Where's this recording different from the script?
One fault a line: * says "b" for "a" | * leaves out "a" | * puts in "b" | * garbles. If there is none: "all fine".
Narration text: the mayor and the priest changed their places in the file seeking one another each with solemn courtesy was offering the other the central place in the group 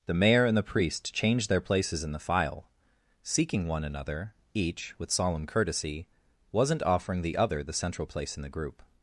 * says "wasn't" for "was"